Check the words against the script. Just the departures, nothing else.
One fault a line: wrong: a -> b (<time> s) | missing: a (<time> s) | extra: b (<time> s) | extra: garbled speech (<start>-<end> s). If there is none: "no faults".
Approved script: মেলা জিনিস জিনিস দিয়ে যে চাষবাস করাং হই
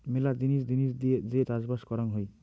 no faults